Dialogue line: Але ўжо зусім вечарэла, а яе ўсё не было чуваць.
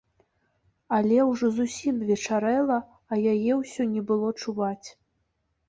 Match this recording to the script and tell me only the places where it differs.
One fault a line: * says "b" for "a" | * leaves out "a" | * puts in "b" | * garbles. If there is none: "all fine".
all fine